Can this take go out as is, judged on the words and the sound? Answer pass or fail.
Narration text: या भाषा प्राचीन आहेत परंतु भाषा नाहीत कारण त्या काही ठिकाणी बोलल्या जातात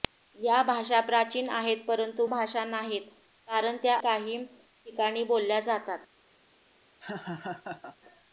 fail